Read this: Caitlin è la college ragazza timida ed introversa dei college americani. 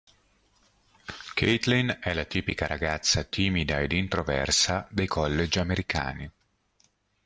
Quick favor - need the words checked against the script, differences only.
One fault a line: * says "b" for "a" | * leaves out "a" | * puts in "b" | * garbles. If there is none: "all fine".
* says "tipica" for "college"